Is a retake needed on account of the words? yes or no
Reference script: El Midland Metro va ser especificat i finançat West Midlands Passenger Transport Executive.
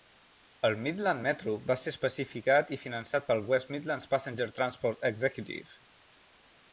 yes